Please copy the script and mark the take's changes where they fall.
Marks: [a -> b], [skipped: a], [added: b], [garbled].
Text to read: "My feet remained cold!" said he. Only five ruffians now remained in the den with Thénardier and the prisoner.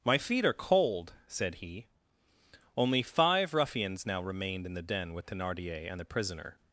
"My feet [remained -> are] cold!" said he. Only five ruffians now remained in the den with Thénardier and the prisoner.